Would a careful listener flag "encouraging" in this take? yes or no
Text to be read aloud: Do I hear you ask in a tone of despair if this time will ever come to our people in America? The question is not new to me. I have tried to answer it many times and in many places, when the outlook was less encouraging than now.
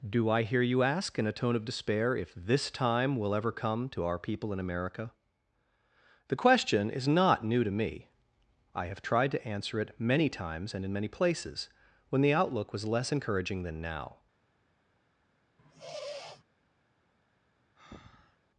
no